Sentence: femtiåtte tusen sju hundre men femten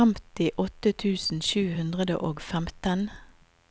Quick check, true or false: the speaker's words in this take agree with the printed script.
false